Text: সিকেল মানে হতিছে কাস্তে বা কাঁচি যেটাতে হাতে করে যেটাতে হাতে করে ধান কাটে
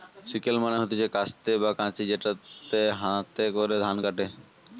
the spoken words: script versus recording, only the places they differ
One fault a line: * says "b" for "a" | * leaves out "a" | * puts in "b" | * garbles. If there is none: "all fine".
* leaves out "যেটাতে হাতে করে"